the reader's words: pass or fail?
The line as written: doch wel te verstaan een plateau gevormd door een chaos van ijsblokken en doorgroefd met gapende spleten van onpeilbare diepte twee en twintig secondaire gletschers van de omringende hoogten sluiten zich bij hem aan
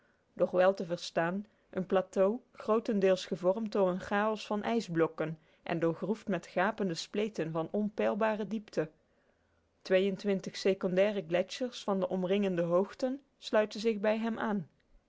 fail